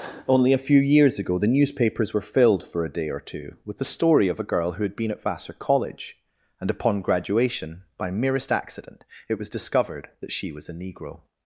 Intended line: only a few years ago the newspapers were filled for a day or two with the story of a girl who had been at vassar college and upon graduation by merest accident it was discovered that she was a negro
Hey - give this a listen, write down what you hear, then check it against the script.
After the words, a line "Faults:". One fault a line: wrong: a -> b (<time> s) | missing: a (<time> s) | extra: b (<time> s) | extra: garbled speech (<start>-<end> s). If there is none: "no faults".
only a few years ago the newspapers were filled for a day or two with the story of a girl who had been at vassar college and upon graduation by merest accident it was discovered that she was a negro
Faults:
no faults